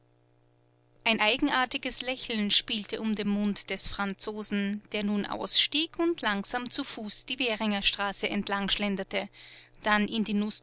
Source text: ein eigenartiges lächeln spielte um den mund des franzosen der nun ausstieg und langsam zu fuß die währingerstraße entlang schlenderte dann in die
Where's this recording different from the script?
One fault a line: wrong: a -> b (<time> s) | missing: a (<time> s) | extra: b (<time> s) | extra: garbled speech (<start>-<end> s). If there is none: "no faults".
no faults